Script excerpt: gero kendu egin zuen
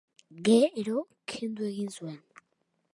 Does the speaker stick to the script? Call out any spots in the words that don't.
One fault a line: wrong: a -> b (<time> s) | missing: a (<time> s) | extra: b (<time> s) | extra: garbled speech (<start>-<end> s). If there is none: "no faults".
no faults